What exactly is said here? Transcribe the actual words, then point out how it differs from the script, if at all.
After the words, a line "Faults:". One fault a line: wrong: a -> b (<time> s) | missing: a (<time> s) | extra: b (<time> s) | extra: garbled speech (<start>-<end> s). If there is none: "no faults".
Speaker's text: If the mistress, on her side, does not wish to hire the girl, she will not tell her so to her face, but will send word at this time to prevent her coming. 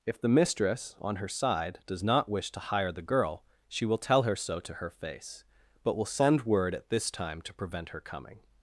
If the mistress, on her side, does not wish to hire the girl, she will tell her so to her face, but will send word at this time to prevent her coming.
Faults:
missing: not (4.0 s)